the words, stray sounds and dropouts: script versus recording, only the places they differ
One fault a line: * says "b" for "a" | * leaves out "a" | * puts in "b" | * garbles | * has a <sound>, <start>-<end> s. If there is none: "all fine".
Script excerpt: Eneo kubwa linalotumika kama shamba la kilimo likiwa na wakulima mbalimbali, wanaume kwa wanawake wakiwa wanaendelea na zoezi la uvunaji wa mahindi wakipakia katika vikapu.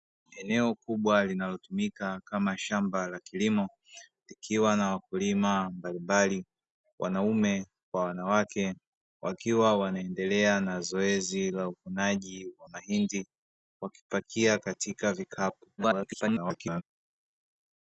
* garbles